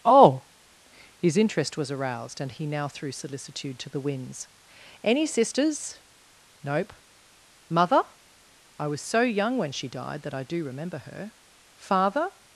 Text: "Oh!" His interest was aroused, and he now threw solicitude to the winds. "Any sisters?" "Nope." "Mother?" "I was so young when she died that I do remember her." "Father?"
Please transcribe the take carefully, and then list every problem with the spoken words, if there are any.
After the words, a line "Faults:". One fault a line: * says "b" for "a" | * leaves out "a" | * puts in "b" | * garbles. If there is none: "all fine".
"Oh!" His interest was aroused, and he now threw solicitude to the winds. "Any sisters?" "Nope." "Mother?" "I was so young when she died that I do remember her." "Father?"
Faults:
all fine